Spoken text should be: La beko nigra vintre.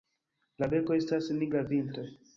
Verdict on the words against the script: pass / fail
fail